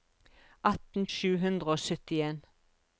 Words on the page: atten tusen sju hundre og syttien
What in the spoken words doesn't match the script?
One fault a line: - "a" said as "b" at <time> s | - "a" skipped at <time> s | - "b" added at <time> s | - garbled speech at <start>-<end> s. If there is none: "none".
- "tusen" skipped at 1.0 s